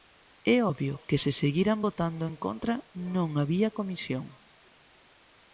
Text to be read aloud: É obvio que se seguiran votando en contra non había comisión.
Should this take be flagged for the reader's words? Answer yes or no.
no